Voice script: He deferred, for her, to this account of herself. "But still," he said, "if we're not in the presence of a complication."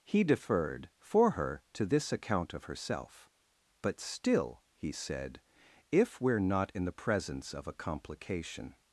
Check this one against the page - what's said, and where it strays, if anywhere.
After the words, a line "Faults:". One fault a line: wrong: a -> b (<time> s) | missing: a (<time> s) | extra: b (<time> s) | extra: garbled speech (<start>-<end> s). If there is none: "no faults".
He deferred, for her, to this account of herself. "But still," he said, "if we're not in the presence of a complication."
Faults:
no faults